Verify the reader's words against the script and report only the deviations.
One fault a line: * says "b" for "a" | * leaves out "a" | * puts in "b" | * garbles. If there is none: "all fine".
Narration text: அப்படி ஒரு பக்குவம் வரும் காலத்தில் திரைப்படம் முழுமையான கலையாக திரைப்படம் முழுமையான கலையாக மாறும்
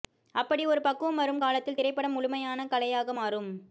* leaves out "திரைப்படம் முழுமையான கலையாக"